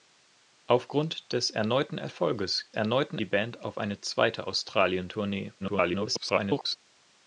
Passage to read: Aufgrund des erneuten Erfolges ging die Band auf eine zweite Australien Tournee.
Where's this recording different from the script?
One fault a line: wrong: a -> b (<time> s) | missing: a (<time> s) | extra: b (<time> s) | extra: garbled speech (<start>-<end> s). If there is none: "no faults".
wrong: ging -> erneuten (2.7 s)
extra: garbled speech (5.6-6.8 s)